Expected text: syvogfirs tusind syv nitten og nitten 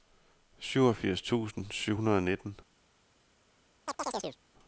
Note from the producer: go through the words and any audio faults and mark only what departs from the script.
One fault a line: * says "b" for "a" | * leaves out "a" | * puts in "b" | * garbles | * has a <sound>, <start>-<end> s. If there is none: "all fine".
* says "hundrede" for "nitten"
* has a chirp, 3.9-4.4 s